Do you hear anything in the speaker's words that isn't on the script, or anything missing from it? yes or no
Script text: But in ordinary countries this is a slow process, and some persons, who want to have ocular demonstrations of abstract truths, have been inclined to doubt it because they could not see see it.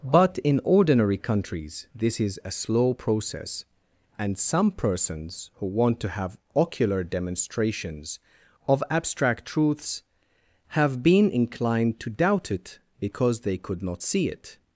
yes